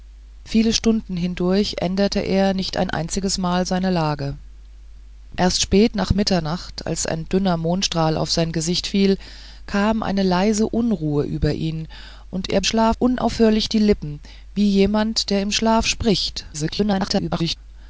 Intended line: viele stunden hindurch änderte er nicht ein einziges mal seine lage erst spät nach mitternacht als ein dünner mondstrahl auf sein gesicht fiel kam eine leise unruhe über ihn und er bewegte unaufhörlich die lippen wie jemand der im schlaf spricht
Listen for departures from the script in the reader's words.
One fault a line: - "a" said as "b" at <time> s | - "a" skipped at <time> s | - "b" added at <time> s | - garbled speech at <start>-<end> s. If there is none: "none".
- "bewegte" said as "schlaf" at 12.6 s
- garbled speech at 16.5-17.6 s